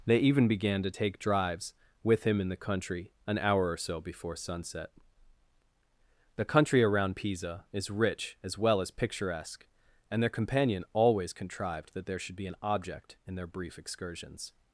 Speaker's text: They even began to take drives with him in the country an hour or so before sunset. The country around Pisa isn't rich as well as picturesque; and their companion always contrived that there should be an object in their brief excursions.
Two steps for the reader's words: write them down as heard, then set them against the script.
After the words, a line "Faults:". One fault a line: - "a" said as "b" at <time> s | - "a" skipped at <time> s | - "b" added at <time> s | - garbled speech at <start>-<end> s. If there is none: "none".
They even began to take drives with him in the country an hour or so before sunset. The country around Pisa is rich as well as picturesque; and their companion always contrived that there should be an object in their brief excursions.
Faults:
- "isn't" said as "is" at 7.7 s